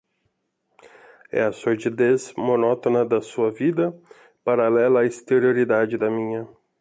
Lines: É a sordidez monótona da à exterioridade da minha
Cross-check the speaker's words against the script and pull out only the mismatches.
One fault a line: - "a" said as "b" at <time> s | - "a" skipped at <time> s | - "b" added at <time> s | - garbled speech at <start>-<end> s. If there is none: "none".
- "sua vida paralela" added at 3.2 s